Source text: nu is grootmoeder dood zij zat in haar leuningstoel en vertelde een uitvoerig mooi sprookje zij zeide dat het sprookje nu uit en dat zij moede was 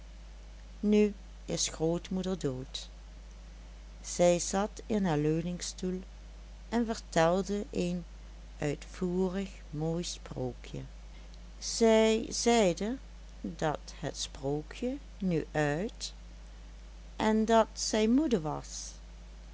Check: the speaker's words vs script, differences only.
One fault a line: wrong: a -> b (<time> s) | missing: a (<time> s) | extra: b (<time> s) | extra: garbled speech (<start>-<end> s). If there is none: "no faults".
no faults